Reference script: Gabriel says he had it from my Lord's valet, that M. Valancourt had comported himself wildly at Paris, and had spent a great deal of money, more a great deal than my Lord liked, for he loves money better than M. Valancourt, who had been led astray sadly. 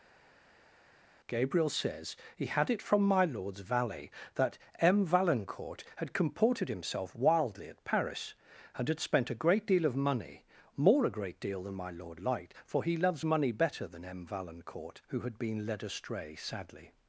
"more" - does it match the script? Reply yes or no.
yes